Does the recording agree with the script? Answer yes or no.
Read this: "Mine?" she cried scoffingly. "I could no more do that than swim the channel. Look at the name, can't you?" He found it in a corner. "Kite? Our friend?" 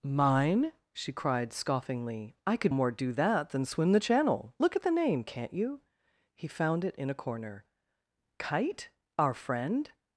no